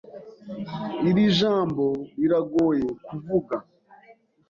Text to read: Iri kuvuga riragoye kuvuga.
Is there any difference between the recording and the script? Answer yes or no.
yes